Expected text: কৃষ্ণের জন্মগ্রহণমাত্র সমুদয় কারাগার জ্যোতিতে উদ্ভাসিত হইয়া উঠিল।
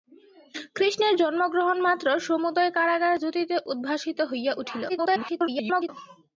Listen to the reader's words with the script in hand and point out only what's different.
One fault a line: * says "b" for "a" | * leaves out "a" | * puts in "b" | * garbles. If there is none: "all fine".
* garbles